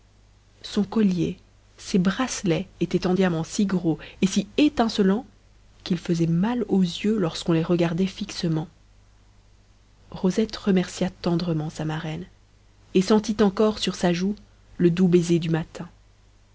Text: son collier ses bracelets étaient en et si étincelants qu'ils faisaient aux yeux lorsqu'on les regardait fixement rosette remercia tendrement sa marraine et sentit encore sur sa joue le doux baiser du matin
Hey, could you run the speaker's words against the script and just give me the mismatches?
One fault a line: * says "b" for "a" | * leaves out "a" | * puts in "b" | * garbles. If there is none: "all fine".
* puts in "diamants si gros"
* puts in "mal"